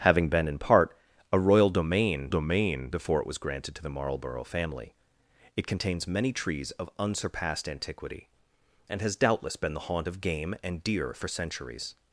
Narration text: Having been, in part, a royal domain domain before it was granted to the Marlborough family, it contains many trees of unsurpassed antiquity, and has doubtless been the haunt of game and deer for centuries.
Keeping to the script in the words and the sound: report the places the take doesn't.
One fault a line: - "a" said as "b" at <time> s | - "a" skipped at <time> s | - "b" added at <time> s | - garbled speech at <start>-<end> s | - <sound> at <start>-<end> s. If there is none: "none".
none